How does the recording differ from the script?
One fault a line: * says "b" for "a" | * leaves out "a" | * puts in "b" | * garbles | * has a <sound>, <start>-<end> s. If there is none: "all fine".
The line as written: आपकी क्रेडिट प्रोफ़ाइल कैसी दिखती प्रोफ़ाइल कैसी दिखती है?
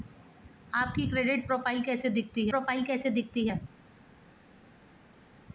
all fine